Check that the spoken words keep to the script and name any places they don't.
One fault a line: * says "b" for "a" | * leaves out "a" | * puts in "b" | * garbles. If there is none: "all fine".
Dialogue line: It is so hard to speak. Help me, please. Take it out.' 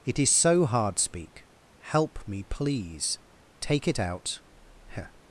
* leaves out "to"